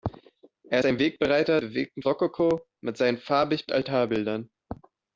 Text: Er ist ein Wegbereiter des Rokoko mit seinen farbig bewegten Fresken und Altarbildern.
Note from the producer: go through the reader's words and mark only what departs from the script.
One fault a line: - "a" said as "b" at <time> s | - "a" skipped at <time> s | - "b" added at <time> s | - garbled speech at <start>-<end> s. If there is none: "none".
- "ist" skipped at 0.8 s
- "des" said as "bewegten" at 1.6 s
- "bewegten Fresken und" skipped at 3.7 s